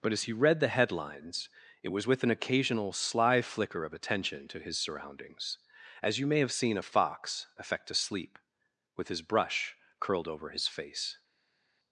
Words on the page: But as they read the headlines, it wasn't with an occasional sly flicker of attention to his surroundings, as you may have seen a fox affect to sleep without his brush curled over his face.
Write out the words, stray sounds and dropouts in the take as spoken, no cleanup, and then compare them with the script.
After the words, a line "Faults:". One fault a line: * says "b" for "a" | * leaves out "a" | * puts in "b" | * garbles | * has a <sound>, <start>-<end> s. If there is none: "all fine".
But as he read the headlines, it was with an occasional sly flicker of attention to his surroundings, as you may have seen a fox affect to sleep with his brush curled over his face.
Faults:
* says "he" for "they"
* says "was" for "wasn't"
* says "with" for "without"